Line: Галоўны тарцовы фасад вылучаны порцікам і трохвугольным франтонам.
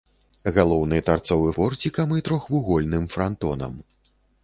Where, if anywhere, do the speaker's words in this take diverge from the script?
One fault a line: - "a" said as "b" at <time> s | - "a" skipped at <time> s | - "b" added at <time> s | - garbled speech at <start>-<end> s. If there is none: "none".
- "фасад вылучаны" skipped at 1.5 s